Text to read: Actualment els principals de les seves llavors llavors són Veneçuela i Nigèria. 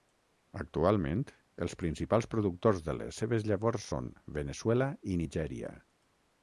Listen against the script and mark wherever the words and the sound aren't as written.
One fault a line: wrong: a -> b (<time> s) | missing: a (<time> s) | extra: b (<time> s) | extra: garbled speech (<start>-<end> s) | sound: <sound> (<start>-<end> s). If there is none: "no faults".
extra: productors (2.3 s)
missing: llavors (3.9 s)